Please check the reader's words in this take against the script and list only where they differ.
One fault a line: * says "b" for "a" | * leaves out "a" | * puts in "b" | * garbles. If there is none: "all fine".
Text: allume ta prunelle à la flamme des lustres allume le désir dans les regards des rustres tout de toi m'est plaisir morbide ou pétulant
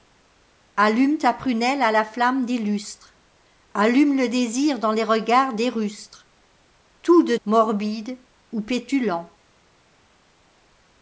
* leaves out "toi m'est plaisir"